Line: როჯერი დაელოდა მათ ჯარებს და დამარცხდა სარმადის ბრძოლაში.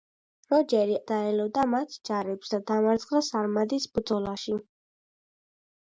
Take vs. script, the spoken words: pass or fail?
pass